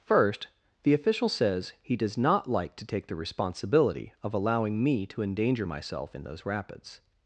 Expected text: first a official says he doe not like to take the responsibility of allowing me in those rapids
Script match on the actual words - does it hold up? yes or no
no